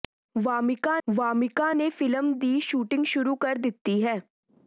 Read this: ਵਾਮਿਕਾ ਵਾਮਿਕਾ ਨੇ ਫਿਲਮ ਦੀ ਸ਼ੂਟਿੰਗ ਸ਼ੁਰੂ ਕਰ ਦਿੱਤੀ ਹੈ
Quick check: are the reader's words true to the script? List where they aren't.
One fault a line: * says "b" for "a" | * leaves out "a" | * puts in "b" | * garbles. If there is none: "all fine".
all fine